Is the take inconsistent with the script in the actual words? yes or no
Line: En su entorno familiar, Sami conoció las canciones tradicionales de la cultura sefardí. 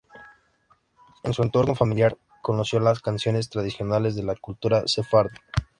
yes